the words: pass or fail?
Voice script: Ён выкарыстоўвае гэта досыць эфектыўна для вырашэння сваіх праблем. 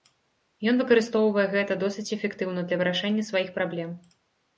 pass